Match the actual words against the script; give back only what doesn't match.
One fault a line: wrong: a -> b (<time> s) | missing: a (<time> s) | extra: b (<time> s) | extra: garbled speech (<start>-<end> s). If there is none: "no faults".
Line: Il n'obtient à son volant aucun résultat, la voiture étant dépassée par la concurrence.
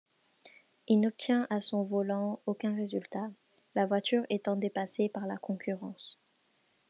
no faults